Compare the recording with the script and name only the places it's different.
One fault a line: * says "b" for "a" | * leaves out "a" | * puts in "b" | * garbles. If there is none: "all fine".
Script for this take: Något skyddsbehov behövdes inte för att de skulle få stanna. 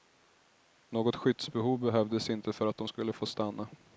all fine